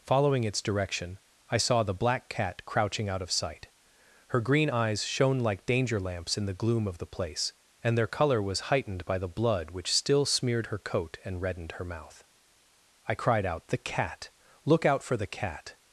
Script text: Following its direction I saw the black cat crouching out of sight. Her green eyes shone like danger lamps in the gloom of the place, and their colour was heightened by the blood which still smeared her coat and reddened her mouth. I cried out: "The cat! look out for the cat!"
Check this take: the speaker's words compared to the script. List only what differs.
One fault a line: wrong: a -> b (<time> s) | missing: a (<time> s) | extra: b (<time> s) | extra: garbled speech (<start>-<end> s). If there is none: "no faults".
no faults